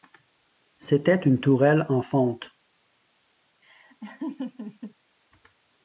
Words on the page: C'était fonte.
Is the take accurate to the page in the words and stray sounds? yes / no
no